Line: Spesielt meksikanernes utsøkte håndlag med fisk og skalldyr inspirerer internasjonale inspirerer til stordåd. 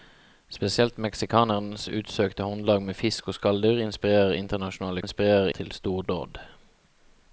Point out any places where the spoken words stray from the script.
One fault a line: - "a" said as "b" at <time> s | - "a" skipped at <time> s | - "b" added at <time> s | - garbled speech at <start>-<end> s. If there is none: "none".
none